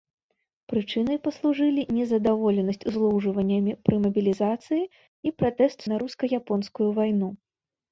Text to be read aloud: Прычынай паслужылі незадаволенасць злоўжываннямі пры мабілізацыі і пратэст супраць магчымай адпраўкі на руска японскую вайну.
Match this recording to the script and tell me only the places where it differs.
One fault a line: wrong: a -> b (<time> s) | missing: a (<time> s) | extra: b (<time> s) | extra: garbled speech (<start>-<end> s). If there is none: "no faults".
missing: супраць магчымай адпраўкі (5.8 s)